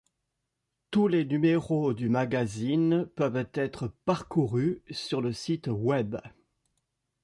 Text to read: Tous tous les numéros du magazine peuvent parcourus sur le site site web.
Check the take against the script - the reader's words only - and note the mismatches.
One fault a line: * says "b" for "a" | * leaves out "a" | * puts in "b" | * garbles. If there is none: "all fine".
* leaves out "tous"
* puts in "être"
* leaves out "site"